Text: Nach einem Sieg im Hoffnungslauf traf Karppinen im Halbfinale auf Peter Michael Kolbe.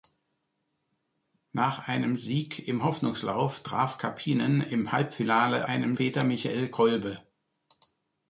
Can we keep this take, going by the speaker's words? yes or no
no